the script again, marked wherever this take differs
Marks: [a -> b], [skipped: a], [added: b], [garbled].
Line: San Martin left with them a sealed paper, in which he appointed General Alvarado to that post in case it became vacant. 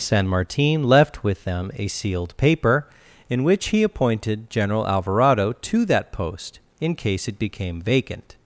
San Martin left with them a sealed paper, in which he appointed General Alvarado to that post in case it became vacant.